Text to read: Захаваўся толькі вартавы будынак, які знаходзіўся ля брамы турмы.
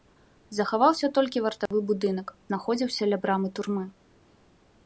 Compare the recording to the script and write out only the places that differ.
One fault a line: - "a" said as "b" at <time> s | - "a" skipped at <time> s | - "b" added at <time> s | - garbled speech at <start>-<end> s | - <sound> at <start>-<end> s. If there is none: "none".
- dropout at 1.7-1.7 s
- "які" skipped at 2.3 s